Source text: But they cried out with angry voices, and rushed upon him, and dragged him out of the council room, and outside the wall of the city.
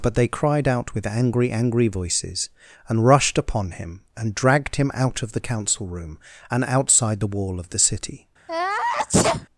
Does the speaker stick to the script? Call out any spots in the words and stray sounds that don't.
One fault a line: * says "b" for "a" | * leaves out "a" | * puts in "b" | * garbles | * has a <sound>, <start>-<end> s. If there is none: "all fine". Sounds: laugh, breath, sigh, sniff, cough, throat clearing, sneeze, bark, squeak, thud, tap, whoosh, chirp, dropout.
* puts in "angry"
* has a sneeze, 8.5-9.5 s